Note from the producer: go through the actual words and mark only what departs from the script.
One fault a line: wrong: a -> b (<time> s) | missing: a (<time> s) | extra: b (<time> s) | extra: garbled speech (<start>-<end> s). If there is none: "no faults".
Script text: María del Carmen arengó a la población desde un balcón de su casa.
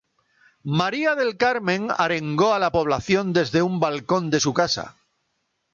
no faults